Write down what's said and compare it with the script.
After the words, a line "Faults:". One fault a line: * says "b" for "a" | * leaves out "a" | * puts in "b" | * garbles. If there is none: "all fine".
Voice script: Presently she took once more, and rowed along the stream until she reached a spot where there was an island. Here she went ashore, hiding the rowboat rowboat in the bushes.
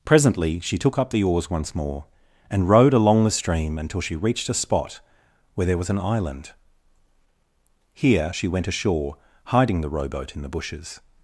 Presently she took up the oars once more, and rowed along the stream until she reached a spot where there was an island. Here she went ashore, hiding the rowboat in the bushes.
Faults:
* puts in "up the oars"
* leaves out "rowboat"